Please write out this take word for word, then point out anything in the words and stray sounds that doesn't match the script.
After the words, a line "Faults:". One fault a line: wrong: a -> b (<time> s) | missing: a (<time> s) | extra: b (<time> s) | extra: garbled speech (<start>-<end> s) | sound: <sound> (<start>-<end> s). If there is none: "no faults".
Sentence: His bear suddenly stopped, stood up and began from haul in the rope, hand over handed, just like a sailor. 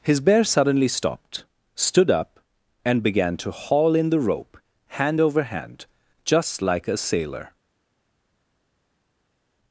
His bear suddenly stopped, stood up and began to haul in the rope, hand over hand, just like a sailor.
Faults:
wrong: from -> to (3.4 s)
wrong: handed -> hand (5.4 s)